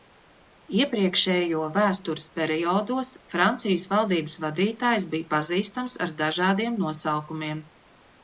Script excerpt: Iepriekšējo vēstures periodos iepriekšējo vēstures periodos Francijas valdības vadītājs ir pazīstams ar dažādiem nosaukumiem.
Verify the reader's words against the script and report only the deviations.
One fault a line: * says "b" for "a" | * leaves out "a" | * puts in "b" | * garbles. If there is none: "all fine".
* leaves out "iepriekšējo vēstures periodos"
* says "bija" for "ir"